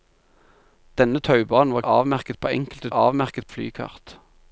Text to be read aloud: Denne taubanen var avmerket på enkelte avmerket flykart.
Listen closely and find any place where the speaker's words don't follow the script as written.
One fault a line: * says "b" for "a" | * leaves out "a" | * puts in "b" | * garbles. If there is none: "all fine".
all fine